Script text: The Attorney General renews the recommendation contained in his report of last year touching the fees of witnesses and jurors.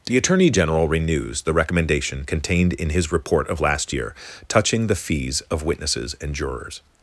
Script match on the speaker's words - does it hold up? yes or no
yes